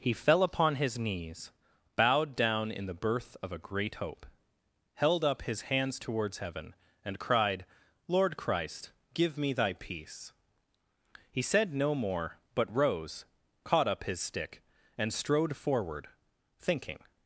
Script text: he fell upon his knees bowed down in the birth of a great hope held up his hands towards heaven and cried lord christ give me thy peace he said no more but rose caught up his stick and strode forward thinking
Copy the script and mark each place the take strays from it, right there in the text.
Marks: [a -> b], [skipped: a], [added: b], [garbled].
he fell upon his knees bowed down in the birth of a great hope held up his hands towards heaven and cried lord christ give me thy peace he said no more but rose caught up his stick and strode forward thinking